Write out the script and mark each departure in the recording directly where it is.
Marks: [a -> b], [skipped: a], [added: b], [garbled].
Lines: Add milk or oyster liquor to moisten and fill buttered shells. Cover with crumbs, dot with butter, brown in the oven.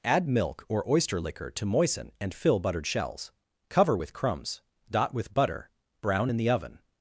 Add milk or oyster liquor to moisten and fill buttered shells. Cover with crumbs, dot with butter, brown in the oven.